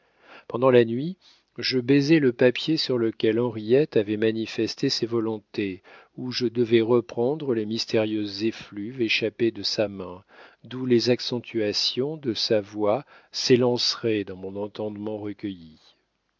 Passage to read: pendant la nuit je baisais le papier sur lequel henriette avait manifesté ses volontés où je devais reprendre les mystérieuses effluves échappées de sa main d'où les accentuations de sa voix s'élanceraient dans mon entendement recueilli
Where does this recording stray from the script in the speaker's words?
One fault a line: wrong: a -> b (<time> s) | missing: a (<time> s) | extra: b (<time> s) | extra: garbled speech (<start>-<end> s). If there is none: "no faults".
no faults